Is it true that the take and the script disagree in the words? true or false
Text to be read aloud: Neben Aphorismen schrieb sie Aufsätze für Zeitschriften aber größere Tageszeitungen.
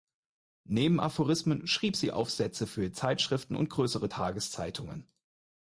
true